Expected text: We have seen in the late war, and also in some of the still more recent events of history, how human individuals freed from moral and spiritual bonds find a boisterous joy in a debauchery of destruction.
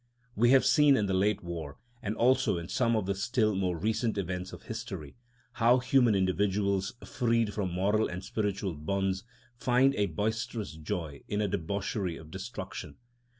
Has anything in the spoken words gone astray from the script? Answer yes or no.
no